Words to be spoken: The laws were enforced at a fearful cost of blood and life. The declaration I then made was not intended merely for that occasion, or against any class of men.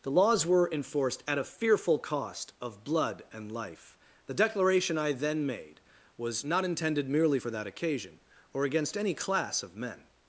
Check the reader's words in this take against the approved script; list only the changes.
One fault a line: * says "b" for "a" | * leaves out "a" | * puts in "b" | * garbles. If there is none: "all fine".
all fine